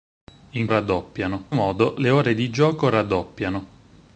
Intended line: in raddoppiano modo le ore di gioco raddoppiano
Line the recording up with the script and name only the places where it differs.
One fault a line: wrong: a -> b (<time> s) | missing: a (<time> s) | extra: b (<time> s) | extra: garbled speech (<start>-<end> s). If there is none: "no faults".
no faults